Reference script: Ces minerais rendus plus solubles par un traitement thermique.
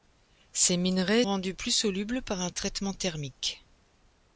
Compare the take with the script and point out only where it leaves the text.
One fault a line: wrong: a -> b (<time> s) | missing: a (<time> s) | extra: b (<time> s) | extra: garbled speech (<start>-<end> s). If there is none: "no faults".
no faults